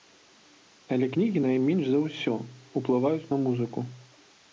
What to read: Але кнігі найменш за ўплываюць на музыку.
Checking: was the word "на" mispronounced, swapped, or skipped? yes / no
no